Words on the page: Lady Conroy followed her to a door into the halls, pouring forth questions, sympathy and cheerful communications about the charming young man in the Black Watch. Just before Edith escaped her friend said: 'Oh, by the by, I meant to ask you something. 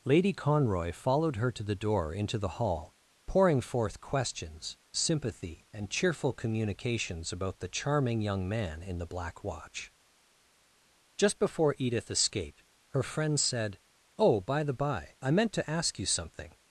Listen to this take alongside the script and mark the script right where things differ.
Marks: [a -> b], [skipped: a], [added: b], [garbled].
Lady Conroy followed her to [a -> the] door into the [halls, -> hall] pouring forth questions, sympathy and cheerful communications about the charming young man in the Black Watch. Just before Edith escaped her friend said: 'Oh, by the by, I meant to ask you something.